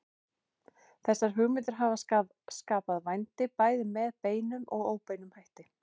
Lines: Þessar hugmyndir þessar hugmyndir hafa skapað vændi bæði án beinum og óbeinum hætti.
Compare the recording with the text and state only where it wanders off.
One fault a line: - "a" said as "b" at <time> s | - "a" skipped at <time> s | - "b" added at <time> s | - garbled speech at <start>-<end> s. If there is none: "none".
- "þessar hugmyndir" skipped at 1.8 s
- "án" said as "með" at 4.0 s